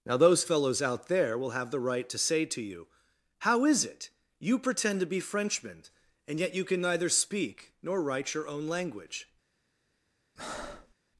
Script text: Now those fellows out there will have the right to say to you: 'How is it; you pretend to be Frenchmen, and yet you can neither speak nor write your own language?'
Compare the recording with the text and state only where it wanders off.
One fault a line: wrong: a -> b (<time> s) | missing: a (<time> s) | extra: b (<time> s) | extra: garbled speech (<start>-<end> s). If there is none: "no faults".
no faults